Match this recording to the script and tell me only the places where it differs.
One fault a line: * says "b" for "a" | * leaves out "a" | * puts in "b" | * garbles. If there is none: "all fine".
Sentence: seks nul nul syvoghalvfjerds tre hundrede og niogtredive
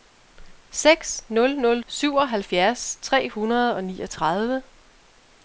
all fine